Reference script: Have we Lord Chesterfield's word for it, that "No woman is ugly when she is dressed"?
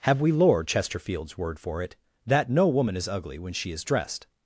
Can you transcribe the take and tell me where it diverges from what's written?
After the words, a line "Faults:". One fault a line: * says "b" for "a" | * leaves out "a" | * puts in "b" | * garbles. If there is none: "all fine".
Have we Lord Chesterfield's word for it, that "No woman is ugly when she is dressed"?
Faults:
all fine